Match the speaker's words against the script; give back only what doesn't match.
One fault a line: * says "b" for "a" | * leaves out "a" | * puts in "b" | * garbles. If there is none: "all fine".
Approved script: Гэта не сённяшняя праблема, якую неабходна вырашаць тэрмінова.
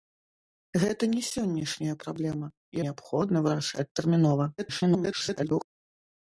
* leaves out "якую"
* garbles